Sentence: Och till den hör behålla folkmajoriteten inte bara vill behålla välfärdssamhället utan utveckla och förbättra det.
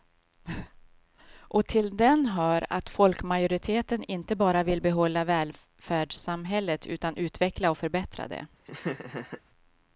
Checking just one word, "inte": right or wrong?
right